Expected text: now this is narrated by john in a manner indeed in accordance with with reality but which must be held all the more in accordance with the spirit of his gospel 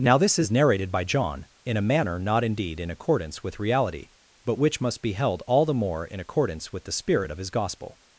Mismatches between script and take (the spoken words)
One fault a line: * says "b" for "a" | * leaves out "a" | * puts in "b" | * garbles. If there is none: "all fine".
* puts in "not"
* leaves out "with"